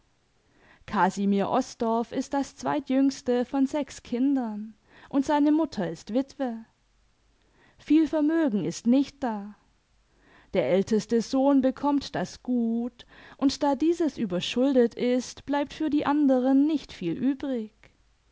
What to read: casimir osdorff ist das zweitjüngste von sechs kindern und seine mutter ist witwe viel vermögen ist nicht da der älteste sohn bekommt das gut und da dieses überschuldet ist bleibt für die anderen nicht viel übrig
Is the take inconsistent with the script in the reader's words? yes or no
no